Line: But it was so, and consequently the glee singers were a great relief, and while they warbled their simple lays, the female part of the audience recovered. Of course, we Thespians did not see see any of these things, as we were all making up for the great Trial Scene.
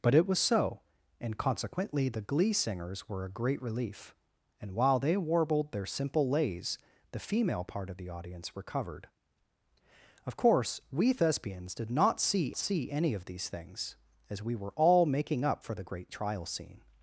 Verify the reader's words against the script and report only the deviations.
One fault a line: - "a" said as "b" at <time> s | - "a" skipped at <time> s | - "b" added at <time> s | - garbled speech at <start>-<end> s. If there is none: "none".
none